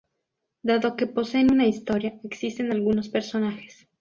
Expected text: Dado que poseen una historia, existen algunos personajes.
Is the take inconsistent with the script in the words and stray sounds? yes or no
no